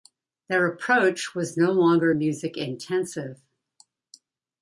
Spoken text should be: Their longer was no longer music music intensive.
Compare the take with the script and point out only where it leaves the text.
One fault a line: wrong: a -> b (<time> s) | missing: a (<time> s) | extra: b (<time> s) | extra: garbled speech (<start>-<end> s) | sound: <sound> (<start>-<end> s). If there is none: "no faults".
wrong: longer -> approach (0.7 s)
missing: music (2.5 s)